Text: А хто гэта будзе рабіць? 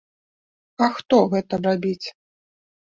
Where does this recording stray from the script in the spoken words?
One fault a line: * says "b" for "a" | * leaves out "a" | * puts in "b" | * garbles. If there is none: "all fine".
* leaves out "будзе"